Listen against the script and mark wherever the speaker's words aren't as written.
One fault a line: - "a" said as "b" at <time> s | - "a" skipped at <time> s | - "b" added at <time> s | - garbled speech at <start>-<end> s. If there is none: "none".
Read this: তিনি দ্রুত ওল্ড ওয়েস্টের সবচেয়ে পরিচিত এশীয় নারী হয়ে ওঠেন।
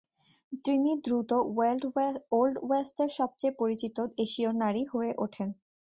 none